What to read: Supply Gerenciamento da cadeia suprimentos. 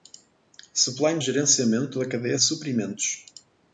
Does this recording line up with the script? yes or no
yes